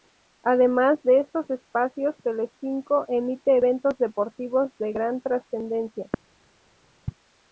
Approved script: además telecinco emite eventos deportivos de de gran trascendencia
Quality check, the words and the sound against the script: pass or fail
fail